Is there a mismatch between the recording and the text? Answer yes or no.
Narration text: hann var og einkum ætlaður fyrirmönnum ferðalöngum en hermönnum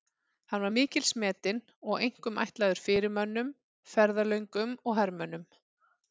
yes